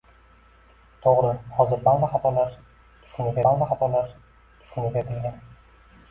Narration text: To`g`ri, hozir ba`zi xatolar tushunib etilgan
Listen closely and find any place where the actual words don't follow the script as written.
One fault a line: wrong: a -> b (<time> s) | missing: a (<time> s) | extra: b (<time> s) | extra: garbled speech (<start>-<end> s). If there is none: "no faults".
extra: ba`zi xatolar tushunib (3.5 s)